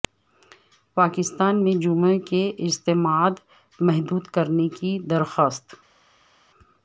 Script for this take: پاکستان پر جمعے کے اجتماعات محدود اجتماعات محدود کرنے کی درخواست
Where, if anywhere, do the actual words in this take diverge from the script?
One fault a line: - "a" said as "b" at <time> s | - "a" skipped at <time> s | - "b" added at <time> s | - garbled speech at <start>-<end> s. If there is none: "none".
- "پر" said as "میں" at 1.6 s
- "اجتماعات محدود" skipped at 4.3 s